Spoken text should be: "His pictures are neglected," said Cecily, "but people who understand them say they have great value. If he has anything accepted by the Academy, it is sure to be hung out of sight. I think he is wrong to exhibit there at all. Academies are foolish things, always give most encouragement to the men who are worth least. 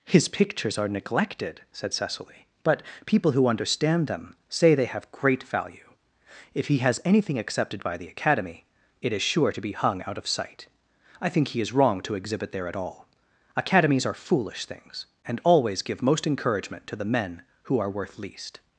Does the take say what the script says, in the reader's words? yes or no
no